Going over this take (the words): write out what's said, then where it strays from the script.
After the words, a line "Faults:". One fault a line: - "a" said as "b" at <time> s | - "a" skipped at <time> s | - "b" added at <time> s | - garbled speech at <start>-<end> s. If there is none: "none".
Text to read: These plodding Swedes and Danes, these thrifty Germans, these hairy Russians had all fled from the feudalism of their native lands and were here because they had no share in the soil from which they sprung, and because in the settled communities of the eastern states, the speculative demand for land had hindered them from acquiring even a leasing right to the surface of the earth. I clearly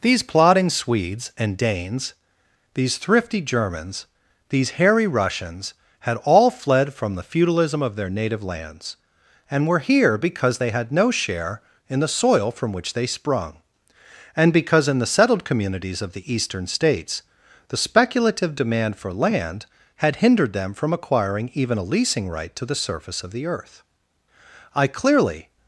These plodding Swedes and Danes, these thrifty Germans, these hairy Russians had all fled from the feudalism of their native lands and were here because they had no share in the soil from which they sprung, and because in the settled communities of the eastern states, the speculative demand for land had hindered them from acquiring even a leasing right to the surface of the earth. I clearly
Faults:
none